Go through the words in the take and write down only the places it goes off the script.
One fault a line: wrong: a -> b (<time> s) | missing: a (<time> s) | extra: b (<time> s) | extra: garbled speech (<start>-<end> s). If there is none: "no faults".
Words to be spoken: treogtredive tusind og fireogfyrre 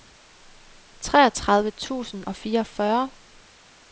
no faults